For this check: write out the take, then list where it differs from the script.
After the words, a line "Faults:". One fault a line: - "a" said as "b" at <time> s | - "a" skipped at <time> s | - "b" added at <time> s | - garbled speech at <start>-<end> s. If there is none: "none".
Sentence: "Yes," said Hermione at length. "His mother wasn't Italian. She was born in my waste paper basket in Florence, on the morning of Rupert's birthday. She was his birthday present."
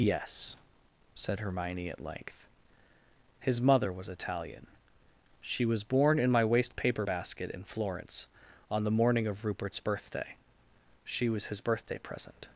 "Yes," said Hermione at length. "His mother was Italian. She was born in my waste paper basket in Florence, on the morning of Rupert's birthday. She was his birthday present."
Faults:
- "wasn't" said as "was" at 3.9 s